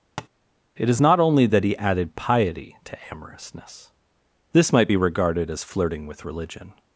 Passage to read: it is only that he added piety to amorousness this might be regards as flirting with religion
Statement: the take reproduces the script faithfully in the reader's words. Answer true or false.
false